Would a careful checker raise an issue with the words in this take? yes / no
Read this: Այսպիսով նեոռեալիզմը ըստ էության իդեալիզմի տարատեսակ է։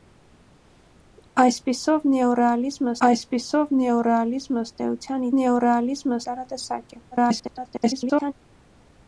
yes